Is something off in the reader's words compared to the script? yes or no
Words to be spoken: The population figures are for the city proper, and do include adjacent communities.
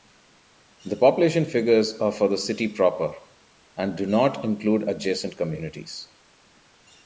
yes